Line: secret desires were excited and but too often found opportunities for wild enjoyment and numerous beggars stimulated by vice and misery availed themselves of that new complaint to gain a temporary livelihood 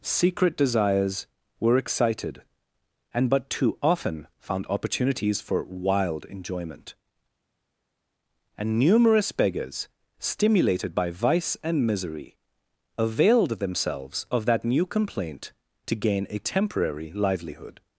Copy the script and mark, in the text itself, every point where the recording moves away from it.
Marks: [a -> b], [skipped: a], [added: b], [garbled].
secret desires were excited and but too often found opportunities for wild enjoyment and numerous beggars stimulated by vice and misery availed themselves of that new complaint to gain a temporary livelihood